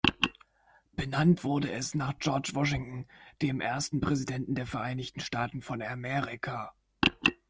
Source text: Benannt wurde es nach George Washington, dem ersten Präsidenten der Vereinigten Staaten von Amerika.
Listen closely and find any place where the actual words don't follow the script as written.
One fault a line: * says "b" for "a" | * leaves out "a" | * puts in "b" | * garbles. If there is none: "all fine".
all fine